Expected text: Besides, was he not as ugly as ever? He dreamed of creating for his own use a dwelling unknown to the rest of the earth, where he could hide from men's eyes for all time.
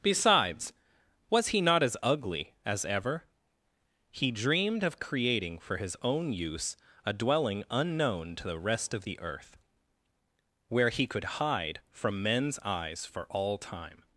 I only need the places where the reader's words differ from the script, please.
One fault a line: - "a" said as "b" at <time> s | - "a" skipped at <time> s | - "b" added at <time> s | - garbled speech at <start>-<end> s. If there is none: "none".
none